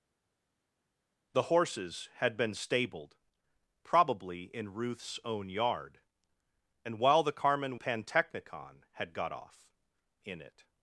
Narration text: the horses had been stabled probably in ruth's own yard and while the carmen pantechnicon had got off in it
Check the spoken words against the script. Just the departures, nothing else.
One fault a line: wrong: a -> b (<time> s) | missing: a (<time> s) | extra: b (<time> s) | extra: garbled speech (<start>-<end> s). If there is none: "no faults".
no faults